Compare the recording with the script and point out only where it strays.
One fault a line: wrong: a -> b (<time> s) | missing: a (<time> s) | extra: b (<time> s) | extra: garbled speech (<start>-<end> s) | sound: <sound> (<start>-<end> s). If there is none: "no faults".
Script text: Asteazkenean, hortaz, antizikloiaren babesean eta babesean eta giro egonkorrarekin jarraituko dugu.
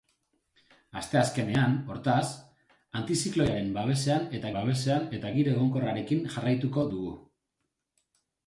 no faults